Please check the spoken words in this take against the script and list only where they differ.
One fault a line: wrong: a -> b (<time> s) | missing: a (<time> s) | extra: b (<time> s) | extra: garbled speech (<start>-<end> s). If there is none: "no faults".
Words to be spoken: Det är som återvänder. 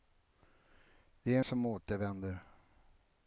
no faults